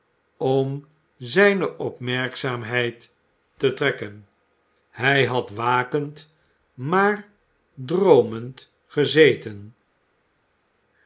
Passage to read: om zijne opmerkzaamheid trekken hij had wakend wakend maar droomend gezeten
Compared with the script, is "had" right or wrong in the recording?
right